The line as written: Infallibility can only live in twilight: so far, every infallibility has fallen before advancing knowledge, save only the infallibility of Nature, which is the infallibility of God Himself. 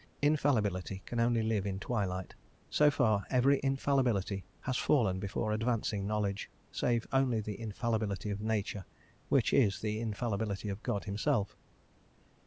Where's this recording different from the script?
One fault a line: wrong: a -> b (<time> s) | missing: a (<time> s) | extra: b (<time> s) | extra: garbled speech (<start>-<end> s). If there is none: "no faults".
no faults